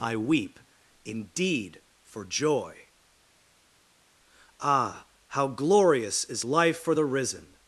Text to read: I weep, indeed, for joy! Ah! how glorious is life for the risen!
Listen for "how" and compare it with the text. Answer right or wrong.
right